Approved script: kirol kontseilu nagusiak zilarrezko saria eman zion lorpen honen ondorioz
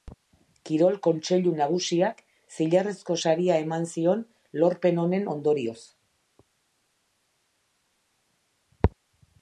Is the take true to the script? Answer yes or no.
yes